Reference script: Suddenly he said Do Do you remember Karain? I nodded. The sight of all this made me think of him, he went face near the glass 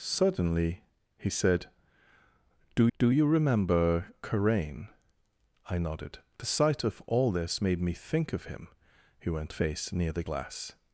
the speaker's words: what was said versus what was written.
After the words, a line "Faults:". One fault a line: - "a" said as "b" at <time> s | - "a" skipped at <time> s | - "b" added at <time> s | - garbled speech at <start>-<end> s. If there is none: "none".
Suddenly he said Do Do you remember Karain? I nodded. The sight of all this made me think of him, he went face near the glass
Faults:
none